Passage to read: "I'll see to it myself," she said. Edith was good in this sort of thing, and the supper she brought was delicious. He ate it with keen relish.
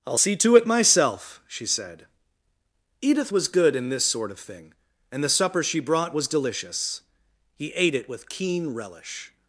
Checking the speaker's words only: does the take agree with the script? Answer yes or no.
yes